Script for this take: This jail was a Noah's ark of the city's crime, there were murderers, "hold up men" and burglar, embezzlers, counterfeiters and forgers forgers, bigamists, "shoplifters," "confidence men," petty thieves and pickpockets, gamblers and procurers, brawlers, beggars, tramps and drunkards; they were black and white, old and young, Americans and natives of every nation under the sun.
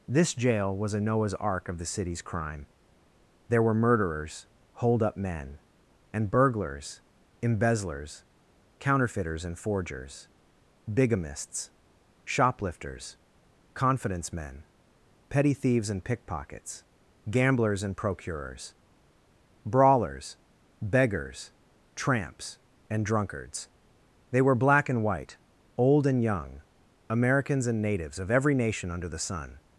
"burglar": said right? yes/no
no